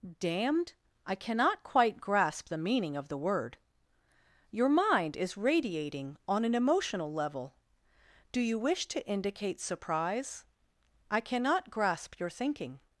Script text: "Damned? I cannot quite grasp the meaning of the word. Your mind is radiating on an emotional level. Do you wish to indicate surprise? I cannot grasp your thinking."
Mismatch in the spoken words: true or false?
false